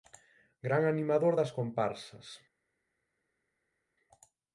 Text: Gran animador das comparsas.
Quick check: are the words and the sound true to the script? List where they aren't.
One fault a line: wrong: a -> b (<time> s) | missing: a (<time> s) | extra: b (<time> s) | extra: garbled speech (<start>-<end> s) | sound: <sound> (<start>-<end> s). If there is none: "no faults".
no faults